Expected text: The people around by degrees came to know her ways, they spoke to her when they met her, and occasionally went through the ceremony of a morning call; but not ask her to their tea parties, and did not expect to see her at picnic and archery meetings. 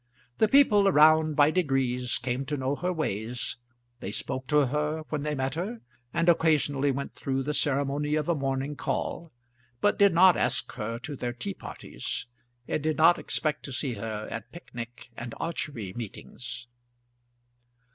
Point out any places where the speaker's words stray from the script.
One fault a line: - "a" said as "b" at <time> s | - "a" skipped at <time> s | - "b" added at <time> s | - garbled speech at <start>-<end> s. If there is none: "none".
- "did" added at 10.0 s